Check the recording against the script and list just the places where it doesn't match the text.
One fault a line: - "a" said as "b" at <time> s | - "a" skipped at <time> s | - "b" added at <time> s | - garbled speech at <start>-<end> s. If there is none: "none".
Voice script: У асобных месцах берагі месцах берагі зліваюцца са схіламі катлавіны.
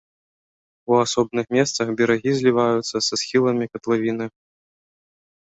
- "месцах берагі" skipped at 2.3 s